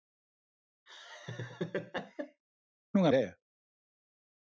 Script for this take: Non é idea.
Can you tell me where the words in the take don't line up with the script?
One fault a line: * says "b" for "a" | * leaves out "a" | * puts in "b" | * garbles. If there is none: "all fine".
all fine